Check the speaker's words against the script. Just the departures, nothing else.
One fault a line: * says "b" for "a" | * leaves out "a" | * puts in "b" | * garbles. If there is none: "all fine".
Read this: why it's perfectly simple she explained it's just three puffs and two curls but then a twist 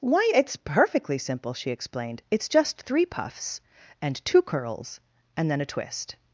* says "and" for "but"